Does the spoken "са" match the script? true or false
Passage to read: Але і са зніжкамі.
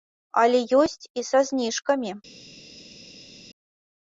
true